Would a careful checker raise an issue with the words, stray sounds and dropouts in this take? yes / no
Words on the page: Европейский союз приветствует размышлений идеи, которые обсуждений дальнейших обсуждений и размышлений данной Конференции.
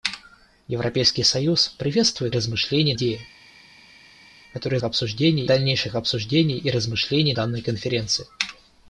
no